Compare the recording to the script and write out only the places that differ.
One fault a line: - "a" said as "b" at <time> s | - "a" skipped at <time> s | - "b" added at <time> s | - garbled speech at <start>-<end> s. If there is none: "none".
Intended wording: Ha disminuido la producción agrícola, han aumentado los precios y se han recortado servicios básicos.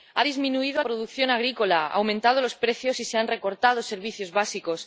- "la" skipped at 0.8 s